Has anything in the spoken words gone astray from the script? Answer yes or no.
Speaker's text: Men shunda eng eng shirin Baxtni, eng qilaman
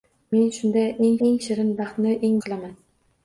no